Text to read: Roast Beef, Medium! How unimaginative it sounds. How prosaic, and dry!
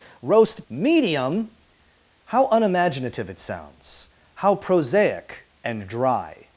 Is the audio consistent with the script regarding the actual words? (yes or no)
no